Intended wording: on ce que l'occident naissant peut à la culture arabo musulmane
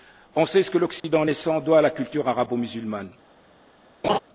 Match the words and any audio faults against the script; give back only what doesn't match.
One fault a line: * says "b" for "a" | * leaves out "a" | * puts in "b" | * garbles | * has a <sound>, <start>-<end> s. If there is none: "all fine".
* puts in "sait"
* has a dropout, 1.0-1.0 s
* says "doit" for "peut"
* has a laugh, 4.0-4.2 s